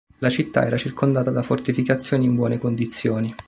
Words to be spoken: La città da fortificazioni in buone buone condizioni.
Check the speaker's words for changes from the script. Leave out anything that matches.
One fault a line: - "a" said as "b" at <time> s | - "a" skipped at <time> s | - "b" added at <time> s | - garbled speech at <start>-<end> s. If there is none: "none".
- "era circondata" added at 0.7 s
- "buone" skipped at 2.6 s